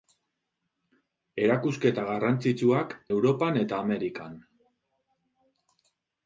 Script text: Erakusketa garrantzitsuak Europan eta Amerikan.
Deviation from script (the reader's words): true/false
false